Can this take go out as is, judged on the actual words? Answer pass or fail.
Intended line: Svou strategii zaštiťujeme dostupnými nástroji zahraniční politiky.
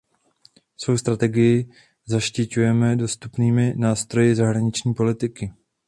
pass